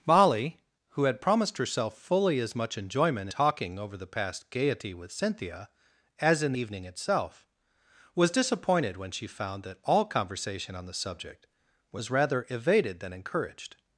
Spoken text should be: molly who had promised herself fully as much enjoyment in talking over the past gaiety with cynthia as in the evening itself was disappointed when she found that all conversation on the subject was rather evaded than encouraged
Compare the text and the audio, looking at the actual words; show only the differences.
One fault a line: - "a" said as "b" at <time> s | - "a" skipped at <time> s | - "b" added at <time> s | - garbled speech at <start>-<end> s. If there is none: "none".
- "in" skipped at 3.3 s
- "the" skipped at 6.5 s